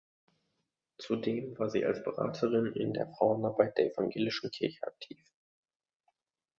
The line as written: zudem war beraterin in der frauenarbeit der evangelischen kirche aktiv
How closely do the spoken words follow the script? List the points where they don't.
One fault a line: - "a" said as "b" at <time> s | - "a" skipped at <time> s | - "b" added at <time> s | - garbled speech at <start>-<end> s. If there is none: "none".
- "sie als" added at 1.7 s